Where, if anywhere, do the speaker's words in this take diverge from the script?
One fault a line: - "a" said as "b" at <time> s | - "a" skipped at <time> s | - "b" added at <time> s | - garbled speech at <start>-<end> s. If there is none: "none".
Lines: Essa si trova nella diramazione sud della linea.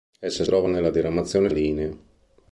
- "si" skipped at 0.5 s
- "sud della" skipped at 1.5 s